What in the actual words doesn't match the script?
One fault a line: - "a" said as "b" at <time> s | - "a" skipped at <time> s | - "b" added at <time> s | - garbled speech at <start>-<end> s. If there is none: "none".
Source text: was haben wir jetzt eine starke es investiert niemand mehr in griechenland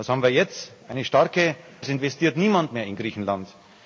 none